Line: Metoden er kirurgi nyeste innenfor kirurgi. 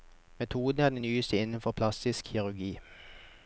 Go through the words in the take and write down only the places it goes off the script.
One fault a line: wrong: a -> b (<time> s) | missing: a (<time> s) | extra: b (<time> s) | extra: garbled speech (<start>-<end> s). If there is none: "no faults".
wrong: kirurgi -> den (0.9 s)
extra: plastisk (1.7 s)